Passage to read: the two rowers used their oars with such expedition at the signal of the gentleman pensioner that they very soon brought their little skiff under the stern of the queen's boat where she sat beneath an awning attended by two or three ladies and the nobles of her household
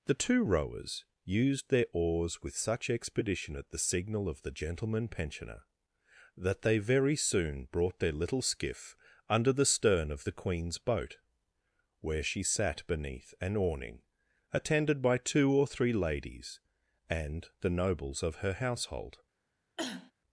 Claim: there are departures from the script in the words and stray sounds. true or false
true